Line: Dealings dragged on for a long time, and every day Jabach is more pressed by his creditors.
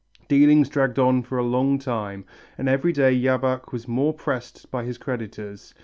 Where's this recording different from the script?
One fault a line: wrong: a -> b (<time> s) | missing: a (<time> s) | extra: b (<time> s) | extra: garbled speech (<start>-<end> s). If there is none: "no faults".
wrong: is -> was (3.7 s)